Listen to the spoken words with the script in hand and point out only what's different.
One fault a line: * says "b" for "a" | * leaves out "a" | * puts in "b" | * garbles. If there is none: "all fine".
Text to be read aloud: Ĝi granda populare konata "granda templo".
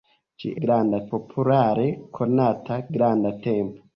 all fine